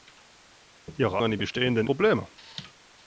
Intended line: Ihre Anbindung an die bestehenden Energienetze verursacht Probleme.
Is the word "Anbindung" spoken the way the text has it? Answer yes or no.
no